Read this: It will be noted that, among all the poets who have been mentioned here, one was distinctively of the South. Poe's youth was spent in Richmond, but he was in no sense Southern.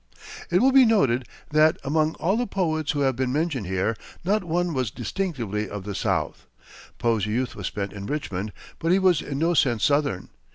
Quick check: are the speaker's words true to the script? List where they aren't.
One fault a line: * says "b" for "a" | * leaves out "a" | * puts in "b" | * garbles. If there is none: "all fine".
* puts in "not"